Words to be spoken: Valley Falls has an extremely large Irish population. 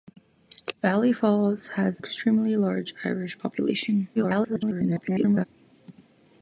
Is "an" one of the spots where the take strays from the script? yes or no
yes